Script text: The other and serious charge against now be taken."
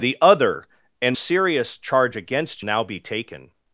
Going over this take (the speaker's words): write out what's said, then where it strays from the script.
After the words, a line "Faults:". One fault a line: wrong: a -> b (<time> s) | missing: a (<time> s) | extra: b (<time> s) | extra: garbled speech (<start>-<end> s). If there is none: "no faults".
The other and serious charge against now be taken."
Faults:
no faults